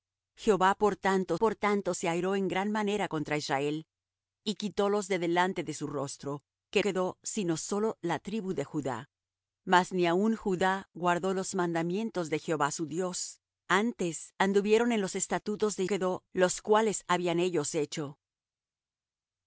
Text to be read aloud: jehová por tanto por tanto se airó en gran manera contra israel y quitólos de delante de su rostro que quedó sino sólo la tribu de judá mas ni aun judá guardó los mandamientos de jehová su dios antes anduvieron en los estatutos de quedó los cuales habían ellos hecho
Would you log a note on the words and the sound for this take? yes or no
no